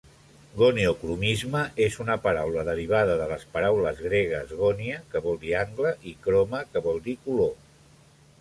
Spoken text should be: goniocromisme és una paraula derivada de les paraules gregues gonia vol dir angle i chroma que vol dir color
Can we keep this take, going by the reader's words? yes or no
no